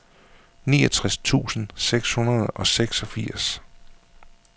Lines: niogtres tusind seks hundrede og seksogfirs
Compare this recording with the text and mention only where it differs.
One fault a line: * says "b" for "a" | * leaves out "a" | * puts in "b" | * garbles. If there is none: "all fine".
all fine